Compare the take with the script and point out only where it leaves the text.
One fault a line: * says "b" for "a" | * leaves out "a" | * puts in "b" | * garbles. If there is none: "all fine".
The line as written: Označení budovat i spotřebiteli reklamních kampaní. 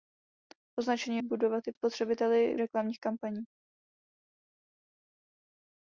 all fine